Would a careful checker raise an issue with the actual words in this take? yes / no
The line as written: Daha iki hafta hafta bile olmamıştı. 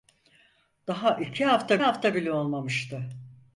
no